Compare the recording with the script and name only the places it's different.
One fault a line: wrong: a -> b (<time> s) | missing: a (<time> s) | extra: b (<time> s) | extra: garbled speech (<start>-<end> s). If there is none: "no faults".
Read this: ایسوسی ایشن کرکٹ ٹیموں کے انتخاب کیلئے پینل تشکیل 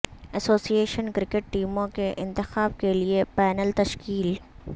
no faults